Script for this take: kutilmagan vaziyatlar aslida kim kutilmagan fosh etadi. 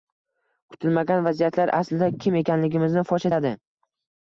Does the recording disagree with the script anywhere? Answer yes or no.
yes